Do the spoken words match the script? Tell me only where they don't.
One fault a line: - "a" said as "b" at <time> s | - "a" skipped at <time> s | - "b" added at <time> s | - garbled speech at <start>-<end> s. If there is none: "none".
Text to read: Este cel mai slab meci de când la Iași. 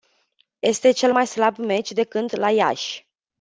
none